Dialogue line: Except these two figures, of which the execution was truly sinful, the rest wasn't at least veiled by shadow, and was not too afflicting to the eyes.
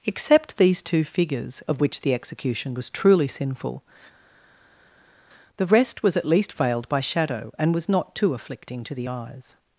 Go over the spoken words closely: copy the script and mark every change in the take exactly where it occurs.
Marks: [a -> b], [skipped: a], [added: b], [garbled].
Except these two figures, of which the execution was truly sinful, the rest [wasn't -> was] at least veiled by shadow, and was not too afflicting to the eyes.